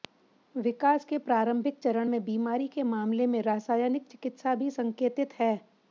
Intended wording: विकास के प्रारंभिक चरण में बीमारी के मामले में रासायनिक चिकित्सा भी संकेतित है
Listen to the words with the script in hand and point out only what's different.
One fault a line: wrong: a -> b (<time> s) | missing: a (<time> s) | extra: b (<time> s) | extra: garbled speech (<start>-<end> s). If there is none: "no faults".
no faults